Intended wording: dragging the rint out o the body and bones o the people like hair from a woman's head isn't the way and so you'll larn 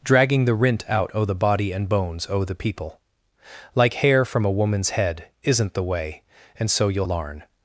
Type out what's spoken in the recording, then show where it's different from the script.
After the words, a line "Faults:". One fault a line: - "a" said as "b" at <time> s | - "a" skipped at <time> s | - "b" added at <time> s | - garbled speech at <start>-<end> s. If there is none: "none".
dragging the rint out o the body and bones o the people like hair from a woman's head isn't the way and so you'll larn
Faults:
none